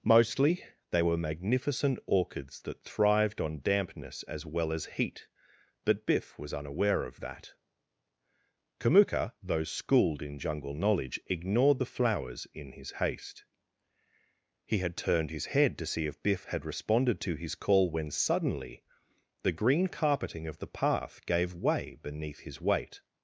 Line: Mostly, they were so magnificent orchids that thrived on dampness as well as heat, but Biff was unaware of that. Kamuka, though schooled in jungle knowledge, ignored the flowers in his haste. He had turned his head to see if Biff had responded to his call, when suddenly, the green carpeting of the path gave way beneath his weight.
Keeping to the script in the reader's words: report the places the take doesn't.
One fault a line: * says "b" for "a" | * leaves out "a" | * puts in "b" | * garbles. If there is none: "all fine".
* leaves out "so"